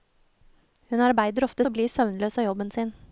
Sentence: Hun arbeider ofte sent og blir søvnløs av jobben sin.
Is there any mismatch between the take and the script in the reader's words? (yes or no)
yes